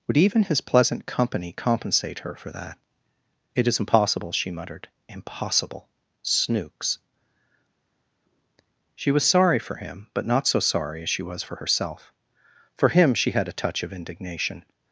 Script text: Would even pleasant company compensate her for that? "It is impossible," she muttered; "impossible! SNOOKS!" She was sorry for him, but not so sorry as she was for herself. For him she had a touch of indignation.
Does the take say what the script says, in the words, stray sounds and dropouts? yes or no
no